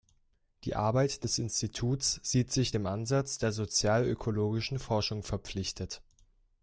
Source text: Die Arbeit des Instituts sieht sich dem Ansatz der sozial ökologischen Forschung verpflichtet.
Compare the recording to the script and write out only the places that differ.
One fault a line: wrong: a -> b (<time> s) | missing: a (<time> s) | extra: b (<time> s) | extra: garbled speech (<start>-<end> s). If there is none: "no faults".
no faults